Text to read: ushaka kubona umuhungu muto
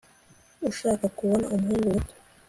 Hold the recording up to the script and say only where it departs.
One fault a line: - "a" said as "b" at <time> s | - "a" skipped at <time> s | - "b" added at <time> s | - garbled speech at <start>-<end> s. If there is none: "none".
none